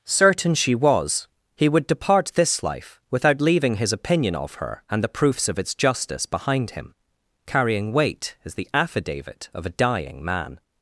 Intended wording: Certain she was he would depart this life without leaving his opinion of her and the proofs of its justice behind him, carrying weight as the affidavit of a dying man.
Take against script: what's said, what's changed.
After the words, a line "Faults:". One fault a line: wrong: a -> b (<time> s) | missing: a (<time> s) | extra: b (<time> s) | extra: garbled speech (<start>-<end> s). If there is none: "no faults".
Certain she was he would depart this life without leaving his opinion of her and the proofs of its justice behind him, carrying weight as the affidavit of a dying man.
Faults:
no faults